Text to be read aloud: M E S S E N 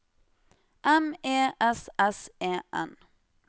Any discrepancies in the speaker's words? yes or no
no